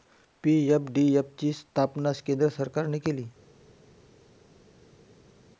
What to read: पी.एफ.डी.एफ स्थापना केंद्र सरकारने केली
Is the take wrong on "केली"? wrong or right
right